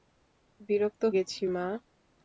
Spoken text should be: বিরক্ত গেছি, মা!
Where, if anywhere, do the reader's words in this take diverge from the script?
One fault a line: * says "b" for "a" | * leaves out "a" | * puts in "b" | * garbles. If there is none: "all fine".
all fine